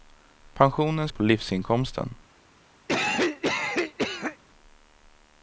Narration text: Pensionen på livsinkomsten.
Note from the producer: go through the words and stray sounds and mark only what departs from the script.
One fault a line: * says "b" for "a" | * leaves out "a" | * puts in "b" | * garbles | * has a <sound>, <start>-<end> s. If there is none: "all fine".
* has a cough, 2.9-4.4 s